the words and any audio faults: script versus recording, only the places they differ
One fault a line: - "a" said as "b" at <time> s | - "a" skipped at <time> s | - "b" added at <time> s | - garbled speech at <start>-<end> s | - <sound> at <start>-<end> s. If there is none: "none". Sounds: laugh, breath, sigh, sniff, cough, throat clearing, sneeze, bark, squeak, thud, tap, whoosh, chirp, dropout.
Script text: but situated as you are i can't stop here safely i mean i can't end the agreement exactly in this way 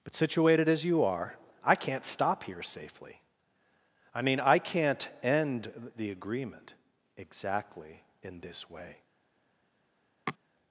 - sniff at 10.3-10.4 s